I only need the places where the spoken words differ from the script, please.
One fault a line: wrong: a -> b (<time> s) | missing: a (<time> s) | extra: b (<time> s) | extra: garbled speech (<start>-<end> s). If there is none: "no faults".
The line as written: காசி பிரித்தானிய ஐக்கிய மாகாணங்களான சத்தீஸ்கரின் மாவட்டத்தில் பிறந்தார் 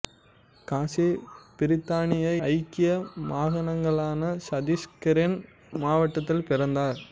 no faults